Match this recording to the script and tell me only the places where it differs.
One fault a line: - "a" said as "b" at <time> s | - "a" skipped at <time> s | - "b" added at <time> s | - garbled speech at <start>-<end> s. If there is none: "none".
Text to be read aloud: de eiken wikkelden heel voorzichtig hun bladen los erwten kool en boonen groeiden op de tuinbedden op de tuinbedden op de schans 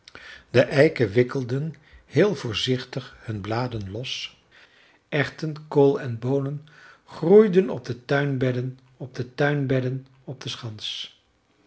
none